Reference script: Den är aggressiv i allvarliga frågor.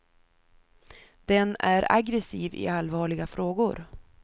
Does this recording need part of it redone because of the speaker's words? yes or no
no